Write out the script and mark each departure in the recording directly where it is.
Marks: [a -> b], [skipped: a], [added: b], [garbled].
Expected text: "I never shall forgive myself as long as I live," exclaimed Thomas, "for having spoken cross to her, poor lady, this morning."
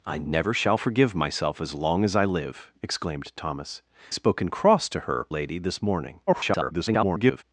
"I never shall forgive myself as long as I live," exclaimed Thomas, [skipped: "for having] spoken cross to her, [skipped: poor] lady, this morning." [garbled]